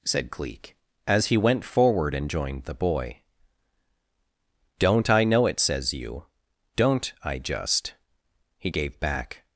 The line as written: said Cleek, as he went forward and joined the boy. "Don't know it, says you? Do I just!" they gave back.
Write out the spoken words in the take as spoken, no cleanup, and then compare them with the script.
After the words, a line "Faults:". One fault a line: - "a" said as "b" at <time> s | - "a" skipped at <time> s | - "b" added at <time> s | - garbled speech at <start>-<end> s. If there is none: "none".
said Cleek, as he went forward and joined the boy. "Don't I know it, says you? Don't I just!" he gave back.
Faults:
- "I" added at 5.1 s
- "Do" said as "Don't" at 6.8 s
- "they" said as "he" at 8.6 s